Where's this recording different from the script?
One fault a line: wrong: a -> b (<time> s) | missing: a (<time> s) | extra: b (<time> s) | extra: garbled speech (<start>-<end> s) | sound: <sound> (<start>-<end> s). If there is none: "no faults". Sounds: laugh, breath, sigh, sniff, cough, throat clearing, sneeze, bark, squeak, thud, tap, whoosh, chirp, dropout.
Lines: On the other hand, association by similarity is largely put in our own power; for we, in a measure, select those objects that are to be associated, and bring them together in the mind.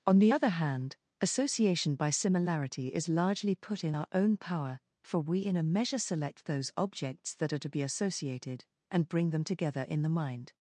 no faults